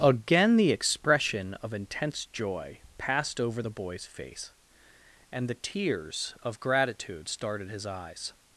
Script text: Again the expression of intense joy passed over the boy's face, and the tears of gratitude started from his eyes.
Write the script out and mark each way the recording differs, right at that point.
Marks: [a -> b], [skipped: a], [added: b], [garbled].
Again the expression of intense joy passed over the boy's face, and the tears of gratitude started [skipped: from] his eyes.